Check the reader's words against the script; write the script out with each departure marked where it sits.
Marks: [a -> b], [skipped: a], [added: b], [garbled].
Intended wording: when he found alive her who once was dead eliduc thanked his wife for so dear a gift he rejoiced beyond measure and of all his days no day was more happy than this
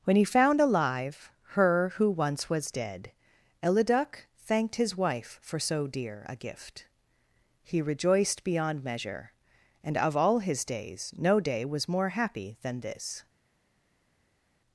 when he found alive her who once was dead eliduc thanked his wife for so dear a gift he rejoiced beyond measure and of all his days no day was more happy than this